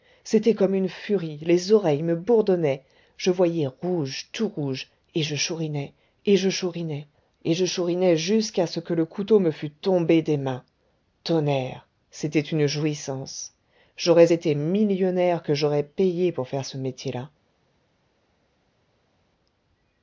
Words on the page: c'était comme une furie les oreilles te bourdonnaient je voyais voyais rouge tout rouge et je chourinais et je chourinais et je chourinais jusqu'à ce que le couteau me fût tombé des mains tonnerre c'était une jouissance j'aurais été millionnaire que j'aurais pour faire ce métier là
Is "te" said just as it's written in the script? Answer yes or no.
no